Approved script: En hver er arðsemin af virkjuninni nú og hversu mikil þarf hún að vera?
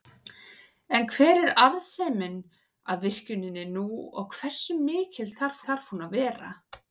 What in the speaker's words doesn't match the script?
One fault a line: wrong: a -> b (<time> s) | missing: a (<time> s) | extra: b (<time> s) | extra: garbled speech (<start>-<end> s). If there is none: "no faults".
extra: þarf (5.7 s)